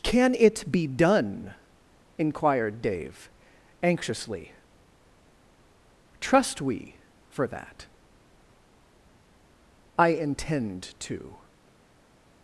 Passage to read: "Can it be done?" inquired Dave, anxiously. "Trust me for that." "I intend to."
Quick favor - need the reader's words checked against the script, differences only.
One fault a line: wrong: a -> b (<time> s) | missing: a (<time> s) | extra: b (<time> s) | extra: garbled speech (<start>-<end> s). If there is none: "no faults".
wrong: me -> we (6.6 s)